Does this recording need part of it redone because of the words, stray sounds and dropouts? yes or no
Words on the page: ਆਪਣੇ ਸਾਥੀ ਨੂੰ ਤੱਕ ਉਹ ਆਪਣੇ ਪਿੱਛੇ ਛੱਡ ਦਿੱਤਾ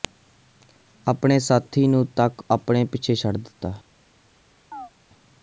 yes